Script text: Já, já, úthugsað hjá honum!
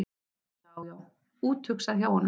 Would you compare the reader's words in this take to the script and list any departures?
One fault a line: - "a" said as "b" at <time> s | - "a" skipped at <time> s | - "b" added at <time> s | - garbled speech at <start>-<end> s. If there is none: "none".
none